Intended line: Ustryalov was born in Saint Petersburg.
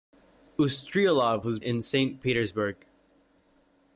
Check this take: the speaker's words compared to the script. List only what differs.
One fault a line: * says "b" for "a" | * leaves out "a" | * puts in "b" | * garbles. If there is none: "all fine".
* leaves out "born"